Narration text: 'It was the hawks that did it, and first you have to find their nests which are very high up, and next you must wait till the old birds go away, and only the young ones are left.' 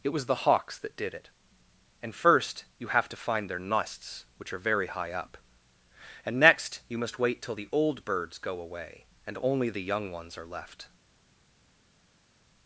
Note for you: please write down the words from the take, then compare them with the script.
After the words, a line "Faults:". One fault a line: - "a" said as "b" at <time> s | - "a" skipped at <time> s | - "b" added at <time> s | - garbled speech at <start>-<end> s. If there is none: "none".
'It was the hawks that did it, and first you have to find their nests which are very high up, and next you must wait till the old birds go away, and only the young ones are left.'
Faults:
none